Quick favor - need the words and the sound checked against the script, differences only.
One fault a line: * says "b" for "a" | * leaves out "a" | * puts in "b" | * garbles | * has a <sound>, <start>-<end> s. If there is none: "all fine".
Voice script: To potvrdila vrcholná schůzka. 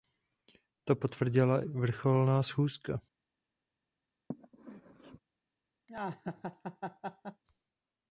* has a sneeze, 4.3-5.2 s
* has a laugh, 5.9-7.4 s